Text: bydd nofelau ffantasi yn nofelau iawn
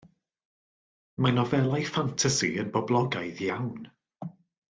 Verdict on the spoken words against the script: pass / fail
fail